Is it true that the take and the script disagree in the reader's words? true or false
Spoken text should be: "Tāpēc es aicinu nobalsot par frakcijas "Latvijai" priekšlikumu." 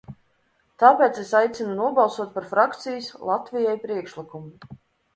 false